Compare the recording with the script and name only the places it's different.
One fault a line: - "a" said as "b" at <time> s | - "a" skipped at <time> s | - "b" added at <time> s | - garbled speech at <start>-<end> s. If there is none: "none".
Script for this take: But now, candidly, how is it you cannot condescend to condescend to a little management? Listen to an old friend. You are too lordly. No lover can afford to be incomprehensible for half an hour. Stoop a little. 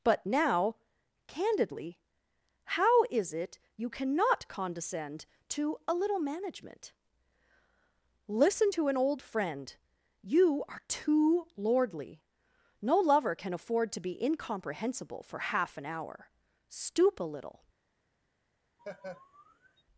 - "condescend to" skipped at 5.8 s